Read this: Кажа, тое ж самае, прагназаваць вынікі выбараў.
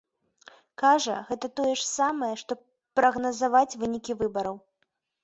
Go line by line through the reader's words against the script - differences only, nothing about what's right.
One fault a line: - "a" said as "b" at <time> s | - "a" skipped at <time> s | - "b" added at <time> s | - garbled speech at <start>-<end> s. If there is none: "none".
- "гэта" added at 1.3 s
- "што" added at 2.4 s